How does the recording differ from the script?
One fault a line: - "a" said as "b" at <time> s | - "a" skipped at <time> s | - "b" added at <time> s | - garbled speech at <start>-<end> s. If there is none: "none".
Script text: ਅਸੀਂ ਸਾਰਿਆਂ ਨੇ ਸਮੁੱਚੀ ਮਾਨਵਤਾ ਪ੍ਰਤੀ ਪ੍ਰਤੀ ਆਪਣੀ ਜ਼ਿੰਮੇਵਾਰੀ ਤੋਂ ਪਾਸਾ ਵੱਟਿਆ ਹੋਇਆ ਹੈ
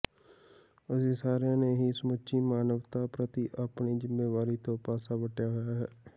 - "ਹੀ" added at 1.8 s
- "ਪ੍ਰਤੀ" skipped at 3.5 s